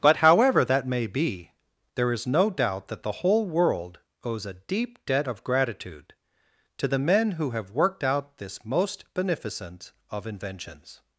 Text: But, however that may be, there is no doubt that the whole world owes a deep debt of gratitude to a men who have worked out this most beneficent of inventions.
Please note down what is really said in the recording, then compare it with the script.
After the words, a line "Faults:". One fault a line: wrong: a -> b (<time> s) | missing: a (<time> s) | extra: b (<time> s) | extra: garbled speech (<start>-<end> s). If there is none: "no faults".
But, however that may be, there is no doubt that the whole world owes a deep debt of gratitude to the men who have worked out this most beneficent of inventions.
Faults:
wrong: a -> the (6.9 s)